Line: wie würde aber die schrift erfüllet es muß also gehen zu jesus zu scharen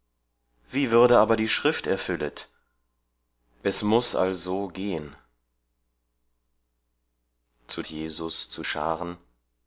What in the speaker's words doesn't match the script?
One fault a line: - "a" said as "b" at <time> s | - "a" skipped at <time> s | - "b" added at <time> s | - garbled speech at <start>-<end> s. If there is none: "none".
none